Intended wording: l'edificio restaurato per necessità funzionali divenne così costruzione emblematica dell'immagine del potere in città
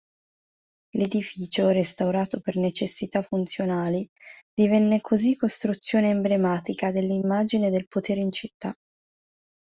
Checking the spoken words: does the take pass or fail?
pass